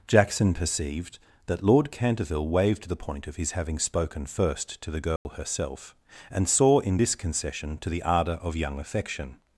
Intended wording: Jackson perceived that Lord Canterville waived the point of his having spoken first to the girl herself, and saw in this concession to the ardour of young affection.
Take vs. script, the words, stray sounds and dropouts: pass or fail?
fail